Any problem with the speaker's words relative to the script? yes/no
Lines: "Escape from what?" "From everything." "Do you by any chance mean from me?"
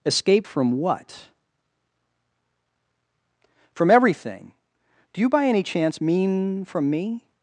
no